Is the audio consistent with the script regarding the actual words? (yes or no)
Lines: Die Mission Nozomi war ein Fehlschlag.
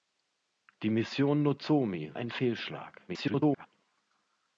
no